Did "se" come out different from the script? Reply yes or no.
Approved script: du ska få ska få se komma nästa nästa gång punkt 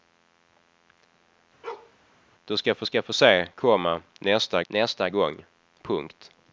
no